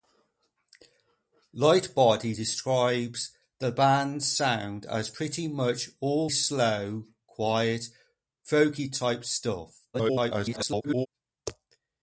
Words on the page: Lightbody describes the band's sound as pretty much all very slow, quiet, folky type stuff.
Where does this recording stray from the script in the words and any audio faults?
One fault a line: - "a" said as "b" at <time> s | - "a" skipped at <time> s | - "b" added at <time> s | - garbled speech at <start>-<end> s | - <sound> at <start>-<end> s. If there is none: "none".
- "very" skipped at 6.3 s
- garbled speech at 9.9-11.1 s